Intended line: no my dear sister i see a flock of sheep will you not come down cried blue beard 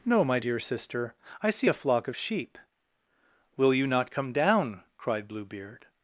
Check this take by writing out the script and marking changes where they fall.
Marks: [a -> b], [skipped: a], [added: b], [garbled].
no my dear sister i see a flock of sheep will you not come down cried blue beard